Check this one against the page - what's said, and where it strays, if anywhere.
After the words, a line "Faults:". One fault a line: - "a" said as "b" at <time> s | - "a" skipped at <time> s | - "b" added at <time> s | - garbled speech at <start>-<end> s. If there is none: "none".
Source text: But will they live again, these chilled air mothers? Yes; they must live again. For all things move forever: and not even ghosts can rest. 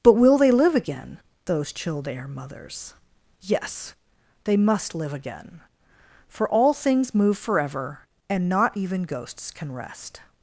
But will they live again, those chilled air mothers? Yes; they must live again. For all things move forever: and not even ghosts can rest.
Faults:
- "these" said as "those" at 1.4 s